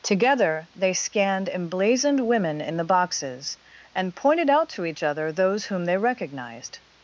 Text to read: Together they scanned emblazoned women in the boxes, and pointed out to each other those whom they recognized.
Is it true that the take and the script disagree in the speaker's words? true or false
false